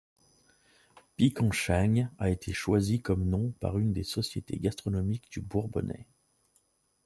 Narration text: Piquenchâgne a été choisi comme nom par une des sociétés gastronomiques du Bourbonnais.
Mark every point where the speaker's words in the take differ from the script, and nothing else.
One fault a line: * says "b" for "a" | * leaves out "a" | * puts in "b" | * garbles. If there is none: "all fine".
all fine